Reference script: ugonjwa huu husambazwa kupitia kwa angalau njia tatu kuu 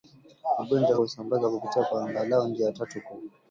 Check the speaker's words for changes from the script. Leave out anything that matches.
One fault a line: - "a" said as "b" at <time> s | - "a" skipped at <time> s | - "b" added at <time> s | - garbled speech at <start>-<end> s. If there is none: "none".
- "huu" skipped at 1.0 s